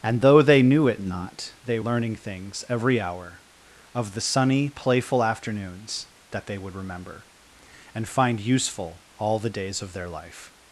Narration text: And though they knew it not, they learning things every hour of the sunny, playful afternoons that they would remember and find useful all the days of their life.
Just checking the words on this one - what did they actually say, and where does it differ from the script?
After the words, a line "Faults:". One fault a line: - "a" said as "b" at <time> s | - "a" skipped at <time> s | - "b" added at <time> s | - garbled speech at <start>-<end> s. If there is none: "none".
And though they knew it not, they learning things every hour of the sunny, playful afternoons that they would remember and find useful all the days of their life.
Faults:
none